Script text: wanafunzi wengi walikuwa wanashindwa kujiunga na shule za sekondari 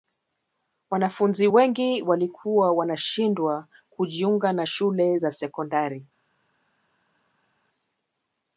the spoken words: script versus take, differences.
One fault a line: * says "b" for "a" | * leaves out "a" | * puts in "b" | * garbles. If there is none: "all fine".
all fine